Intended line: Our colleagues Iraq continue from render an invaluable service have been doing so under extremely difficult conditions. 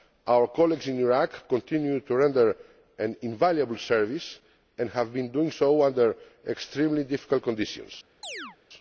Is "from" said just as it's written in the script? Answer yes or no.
no